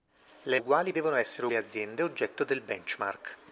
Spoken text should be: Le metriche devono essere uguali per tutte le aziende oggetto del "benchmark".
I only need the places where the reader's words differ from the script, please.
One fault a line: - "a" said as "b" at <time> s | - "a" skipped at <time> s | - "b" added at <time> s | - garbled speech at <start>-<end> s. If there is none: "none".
- "metriche" said as "uguali" at 0.6 s
- "uguali per tutte" skipped at 1.5 s